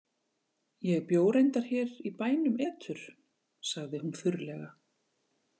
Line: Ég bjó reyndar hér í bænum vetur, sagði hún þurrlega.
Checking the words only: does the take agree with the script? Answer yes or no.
yes